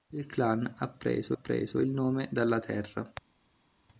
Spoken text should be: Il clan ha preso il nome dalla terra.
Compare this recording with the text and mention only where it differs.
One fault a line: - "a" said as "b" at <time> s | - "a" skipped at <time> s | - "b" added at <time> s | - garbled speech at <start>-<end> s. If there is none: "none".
- "preso" added at 1.3 s